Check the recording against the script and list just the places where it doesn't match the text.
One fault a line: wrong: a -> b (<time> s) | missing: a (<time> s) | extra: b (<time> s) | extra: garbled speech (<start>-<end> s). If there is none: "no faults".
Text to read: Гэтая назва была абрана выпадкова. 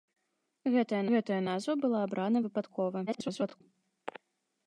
extra: гэтая (1.1 s)
extra: garbled speech (3.1-3.6 s)